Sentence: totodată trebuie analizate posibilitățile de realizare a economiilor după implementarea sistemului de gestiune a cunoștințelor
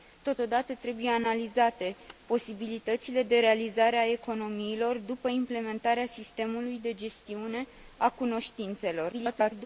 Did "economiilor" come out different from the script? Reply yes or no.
no